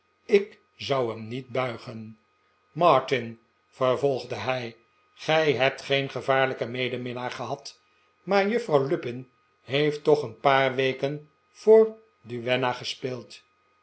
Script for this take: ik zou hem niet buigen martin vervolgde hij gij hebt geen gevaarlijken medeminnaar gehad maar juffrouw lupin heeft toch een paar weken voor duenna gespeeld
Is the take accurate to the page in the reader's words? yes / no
yes